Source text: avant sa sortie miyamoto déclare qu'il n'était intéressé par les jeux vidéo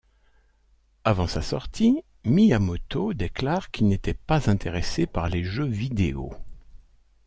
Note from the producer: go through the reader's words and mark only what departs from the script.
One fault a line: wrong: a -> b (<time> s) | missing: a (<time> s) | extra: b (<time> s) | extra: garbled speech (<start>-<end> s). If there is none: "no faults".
extra: pas (4.2 s)